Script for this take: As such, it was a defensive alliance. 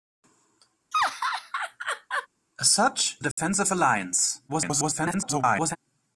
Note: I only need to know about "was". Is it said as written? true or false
false